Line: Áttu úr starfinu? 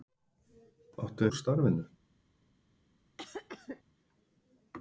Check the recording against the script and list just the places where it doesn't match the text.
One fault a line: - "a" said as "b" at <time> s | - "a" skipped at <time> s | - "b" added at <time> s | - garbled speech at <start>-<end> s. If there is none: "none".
none